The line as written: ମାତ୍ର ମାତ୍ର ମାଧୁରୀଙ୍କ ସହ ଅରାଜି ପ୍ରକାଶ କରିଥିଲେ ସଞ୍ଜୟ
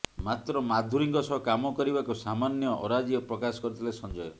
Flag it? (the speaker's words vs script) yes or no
yes